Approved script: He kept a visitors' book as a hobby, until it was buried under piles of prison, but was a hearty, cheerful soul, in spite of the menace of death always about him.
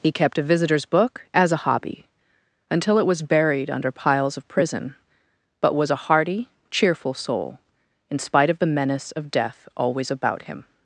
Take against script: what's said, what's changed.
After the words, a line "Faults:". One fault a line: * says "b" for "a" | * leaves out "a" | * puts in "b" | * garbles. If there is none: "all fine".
He kept a visitors' book as a hobby, until it was buried under piles of prison, but was a hearty, cheerful soul, in spite of the menace of death always about him.
Faults:
all fine